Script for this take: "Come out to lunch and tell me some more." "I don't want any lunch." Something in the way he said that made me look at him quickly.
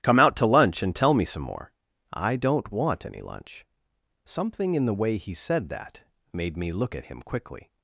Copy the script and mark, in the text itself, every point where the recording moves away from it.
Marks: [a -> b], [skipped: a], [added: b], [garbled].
"Come out to lunch and tell me some more." "I don't want any lunch." Something in the way he said that made me look at him quickly.